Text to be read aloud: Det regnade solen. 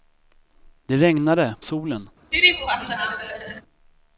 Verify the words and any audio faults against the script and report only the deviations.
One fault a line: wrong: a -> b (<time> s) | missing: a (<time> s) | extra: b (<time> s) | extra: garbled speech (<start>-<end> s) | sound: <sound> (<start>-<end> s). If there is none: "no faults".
sound: laugh (2.3-3.6 s)